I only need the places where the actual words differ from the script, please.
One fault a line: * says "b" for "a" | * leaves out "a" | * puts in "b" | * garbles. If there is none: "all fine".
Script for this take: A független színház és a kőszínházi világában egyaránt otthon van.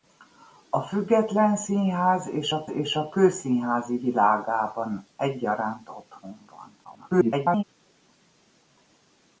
* puts in "és a"
* garbles